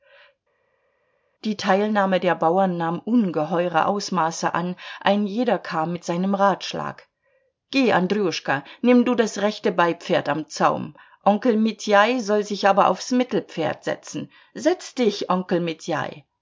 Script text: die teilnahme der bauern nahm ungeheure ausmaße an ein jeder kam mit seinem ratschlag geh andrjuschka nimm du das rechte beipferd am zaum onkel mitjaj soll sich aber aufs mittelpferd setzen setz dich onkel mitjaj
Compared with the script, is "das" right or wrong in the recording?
right